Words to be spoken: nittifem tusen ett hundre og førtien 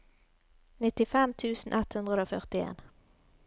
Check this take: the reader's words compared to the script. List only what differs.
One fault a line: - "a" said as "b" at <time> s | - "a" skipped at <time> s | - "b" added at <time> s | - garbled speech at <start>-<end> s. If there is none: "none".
none